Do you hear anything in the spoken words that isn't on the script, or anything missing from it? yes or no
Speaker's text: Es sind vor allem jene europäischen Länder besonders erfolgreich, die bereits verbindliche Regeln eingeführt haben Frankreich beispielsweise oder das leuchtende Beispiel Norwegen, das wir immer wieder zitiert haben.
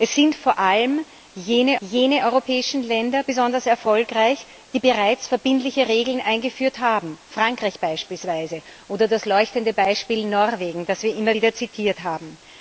yes